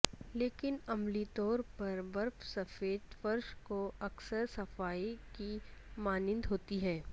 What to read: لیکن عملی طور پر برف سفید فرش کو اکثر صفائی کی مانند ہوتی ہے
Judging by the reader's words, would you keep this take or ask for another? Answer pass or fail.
pass